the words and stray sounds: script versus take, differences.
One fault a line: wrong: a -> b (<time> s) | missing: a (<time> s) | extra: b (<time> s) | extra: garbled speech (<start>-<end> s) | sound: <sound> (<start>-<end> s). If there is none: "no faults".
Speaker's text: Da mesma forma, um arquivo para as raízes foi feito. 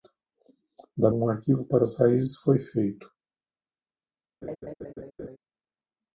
missing: mesma forma (1.1 s)
sound: laugh (4.4-5.4 s)